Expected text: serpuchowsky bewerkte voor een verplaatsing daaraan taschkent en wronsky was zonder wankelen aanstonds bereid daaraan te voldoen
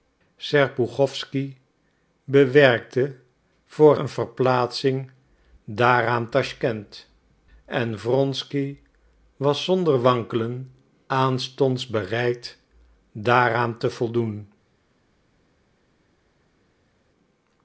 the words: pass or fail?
pass